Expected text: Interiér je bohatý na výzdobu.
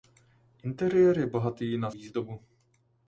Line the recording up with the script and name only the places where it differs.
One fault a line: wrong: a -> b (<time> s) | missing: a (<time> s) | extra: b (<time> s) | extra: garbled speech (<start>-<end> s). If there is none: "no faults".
no faults